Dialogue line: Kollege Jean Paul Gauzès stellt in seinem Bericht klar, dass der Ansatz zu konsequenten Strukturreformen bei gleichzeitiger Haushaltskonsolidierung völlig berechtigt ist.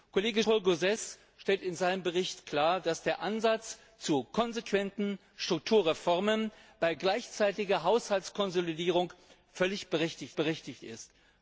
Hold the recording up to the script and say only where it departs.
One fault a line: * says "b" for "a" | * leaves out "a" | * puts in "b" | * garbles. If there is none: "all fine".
* leaves out "Jean"
* puts in "berechtigt"